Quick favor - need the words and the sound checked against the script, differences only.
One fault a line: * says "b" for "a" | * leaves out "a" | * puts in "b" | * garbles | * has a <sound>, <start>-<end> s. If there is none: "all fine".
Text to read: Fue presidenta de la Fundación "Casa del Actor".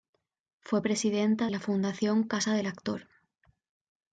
* leaves out "de"